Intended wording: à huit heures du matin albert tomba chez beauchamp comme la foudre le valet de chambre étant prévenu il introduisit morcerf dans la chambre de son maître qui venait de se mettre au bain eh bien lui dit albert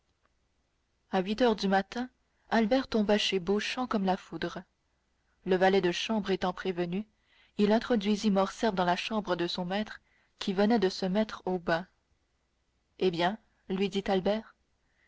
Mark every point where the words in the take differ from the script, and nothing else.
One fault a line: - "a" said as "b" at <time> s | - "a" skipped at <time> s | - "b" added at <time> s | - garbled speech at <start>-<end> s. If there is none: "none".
none